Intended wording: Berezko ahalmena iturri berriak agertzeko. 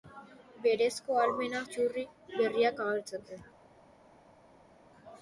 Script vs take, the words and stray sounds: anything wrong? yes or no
no